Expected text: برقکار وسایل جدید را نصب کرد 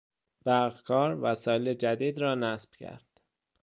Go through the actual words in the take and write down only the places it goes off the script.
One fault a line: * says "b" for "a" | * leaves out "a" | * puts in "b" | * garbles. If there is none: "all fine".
all fine